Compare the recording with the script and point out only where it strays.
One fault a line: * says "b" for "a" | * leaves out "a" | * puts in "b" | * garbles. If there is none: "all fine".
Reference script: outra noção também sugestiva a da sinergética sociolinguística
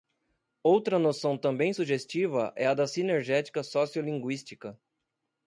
* puts in "é"